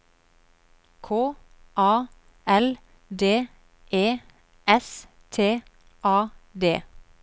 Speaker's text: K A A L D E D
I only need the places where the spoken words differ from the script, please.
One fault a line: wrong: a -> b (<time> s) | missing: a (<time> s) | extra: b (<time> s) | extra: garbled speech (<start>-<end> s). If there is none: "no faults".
missing: A (2.1 s)
extra: S T A (4.6 s)